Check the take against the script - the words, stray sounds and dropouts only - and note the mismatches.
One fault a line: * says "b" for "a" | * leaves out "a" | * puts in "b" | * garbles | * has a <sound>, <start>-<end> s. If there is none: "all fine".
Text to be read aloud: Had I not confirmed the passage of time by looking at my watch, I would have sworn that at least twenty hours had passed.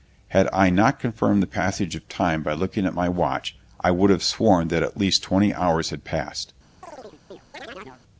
* has a chirp, 6.8-8.0 s